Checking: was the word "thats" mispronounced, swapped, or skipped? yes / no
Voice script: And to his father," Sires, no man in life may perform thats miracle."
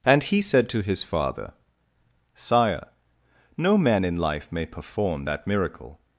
yes